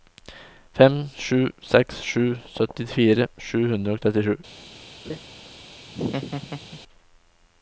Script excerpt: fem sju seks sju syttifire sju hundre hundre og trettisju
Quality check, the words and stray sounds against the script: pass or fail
fail